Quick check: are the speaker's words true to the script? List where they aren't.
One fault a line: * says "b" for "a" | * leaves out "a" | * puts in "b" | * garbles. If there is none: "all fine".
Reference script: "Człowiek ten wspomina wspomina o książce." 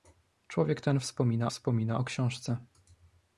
all fine